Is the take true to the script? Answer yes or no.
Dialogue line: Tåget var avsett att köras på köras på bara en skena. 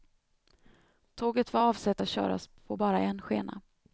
no